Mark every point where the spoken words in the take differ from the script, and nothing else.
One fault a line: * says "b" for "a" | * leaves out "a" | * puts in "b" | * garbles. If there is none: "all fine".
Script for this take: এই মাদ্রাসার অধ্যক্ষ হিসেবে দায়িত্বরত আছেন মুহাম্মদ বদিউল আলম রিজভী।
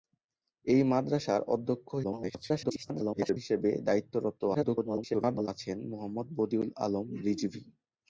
* garbles
* garbles